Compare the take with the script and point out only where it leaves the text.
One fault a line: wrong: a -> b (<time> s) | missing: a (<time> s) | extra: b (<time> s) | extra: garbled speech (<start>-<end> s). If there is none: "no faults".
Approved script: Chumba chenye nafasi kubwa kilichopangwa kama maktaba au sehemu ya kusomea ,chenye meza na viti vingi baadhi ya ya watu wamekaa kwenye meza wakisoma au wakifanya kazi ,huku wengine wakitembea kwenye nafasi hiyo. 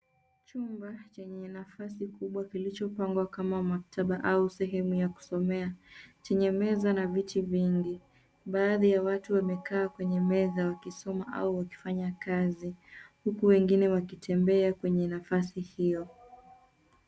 missing: ya (9.0 s)